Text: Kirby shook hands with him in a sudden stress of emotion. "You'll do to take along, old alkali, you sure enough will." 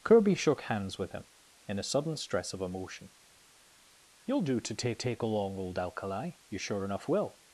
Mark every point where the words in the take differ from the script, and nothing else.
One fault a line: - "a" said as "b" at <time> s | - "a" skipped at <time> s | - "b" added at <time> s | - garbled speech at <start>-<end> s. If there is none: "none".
- "take" added at 5.0 s